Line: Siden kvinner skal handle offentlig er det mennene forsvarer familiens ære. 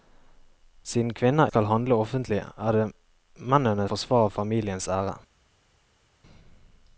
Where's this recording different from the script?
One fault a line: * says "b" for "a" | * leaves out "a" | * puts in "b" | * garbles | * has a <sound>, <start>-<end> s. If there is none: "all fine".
all fine